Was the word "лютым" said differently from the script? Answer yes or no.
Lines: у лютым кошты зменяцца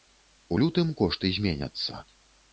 no